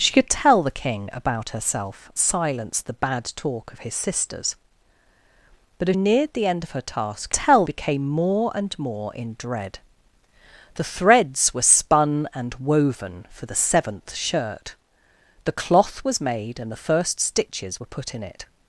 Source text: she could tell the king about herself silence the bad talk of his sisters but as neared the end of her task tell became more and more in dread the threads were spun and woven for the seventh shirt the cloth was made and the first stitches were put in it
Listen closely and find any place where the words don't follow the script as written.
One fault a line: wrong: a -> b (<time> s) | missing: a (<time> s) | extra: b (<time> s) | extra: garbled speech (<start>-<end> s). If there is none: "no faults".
no faults